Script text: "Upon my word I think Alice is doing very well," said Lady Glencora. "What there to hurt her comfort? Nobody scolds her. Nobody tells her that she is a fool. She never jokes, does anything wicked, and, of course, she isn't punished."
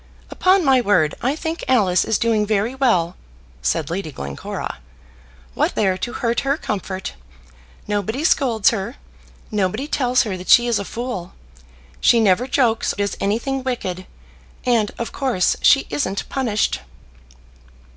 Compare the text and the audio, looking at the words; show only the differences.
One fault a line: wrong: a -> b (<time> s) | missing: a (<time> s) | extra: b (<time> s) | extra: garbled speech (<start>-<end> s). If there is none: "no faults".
no faults